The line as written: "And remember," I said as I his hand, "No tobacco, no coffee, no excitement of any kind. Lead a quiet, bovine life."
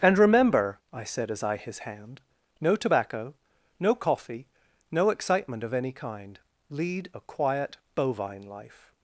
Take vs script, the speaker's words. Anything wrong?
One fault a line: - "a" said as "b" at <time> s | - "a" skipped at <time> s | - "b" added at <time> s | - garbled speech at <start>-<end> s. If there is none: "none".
none